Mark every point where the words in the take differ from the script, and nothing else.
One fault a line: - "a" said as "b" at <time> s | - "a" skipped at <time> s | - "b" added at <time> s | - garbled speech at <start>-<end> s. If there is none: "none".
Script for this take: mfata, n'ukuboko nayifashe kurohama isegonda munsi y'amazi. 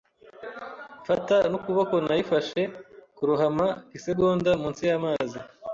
none